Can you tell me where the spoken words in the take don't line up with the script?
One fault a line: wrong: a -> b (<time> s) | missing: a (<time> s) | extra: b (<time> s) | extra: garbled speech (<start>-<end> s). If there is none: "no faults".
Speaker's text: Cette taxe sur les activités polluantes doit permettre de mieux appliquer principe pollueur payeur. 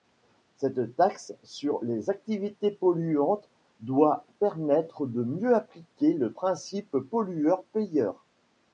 extra: le (6.1 s)